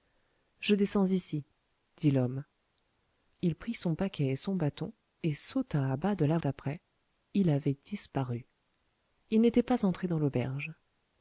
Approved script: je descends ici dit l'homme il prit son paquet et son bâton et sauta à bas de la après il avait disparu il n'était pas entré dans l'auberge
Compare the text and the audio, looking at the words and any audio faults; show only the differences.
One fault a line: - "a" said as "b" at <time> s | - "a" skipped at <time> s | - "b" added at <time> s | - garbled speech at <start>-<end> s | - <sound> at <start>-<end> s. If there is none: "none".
none